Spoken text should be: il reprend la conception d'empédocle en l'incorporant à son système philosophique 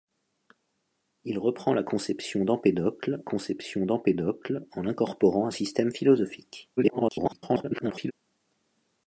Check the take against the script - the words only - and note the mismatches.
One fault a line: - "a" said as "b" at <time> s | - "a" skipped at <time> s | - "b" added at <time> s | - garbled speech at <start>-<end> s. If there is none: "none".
- "conception d'empédocle" added at 3.2 s
- "son" skipped at 5.5 s
- garbled speech at 6.8-8.1 s